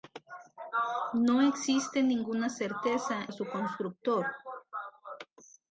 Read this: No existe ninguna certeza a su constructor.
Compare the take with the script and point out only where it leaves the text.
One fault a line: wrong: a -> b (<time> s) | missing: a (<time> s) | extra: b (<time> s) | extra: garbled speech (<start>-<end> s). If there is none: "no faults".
no faults